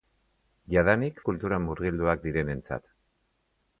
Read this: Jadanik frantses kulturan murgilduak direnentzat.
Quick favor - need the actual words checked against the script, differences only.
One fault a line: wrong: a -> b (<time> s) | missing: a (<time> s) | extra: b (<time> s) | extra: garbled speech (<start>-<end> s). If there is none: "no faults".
missing: frantses (1.2 s)